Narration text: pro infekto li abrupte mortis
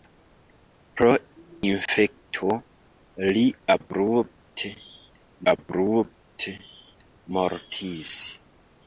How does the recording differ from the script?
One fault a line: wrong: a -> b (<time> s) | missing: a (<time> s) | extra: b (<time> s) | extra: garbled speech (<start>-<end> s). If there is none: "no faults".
extra: abrupte (5.5 s)